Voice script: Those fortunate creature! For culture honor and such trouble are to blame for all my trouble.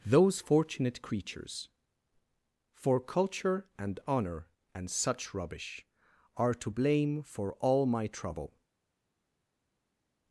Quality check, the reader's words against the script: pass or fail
fail